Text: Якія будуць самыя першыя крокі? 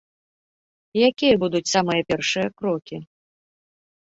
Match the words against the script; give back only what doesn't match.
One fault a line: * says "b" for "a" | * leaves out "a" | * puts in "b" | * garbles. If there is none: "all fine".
all fine